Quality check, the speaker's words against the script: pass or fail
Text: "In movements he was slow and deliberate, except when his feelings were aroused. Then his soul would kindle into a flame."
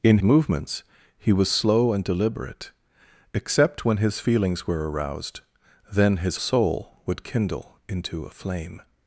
pass